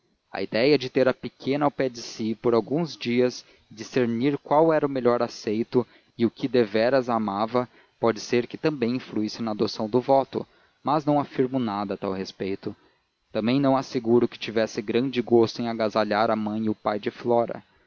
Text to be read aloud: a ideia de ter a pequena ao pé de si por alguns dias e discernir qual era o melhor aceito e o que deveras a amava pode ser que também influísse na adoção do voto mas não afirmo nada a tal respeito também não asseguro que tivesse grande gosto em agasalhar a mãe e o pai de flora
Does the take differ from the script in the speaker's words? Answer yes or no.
no